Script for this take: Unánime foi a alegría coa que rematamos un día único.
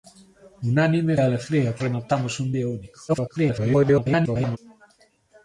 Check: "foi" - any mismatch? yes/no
yes